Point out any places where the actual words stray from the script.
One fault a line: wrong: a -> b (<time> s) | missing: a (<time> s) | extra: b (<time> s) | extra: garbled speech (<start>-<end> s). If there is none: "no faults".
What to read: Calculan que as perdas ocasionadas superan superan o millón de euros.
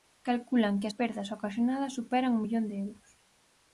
missing: superan (2.3 s)